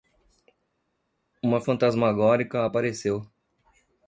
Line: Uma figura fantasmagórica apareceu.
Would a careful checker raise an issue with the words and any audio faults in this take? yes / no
yes